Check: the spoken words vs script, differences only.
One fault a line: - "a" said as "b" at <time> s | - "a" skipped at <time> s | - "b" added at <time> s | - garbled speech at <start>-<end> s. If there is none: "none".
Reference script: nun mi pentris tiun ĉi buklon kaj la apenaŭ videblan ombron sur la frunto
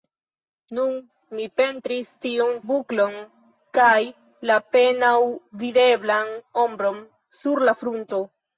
- "ĉi" skipped at 2.5 s